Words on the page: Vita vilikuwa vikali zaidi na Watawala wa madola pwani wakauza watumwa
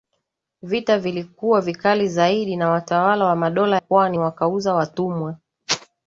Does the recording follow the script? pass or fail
pass